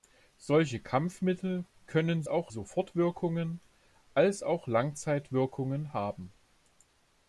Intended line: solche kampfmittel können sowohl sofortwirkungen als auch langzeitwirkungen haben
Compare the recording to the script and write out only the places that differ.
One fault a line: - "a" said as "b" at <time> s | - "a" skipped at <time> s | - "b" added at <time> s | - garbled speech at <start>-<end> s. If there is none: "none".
- "sowohl" said as "auch" at 2.3 s